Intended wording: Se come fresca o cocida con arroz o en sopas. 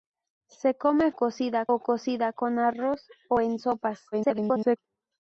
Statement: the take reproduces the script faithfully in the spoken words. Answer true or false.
false